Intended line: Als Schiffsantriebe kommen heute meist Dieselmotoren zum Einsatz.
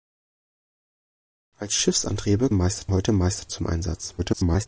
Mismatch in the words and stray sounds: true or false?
true